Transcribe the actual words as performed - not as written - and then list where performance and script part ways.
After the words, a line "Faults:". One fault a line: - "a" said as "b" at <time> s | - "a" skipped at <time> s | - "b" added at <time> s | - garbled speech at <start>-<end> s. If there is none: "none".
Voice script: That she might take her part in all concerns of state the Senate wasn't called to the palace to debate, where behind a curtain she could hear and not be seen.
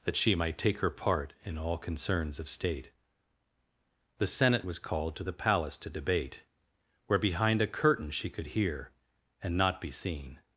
That she might take her part in all concerns of state the Senate was called to the palace to debate, where behind a curtain she could hear and not be seen.
Faults:
- "wasn't" said as "was" at 4.7 s